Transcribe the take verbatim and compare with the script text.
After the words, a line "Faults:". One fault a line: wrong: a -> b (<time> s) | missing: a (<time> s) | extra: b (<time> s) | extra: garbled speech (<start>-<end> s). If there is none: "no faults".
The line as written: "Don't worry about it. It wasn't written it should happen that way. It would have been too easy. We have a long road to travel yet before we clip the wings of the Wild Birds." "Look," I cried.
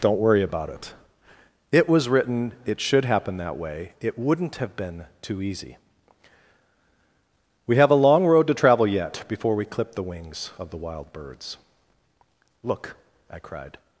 "Don't worry about it. It was written it should happen that way. It wouldn't have been too easy. We have a long road to travel yet before we clip the wings of the Wild Birds." "Look," I cried.
Faults:
wrong: wasn't -> was (1.9 s)
wrong: would -> wouldn't (4.2 s)